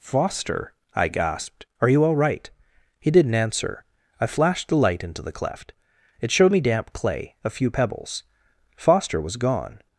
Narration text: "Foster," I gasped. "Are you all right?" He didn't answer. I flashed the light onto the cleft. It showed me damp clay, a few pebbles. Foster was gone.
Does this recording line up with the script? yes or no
no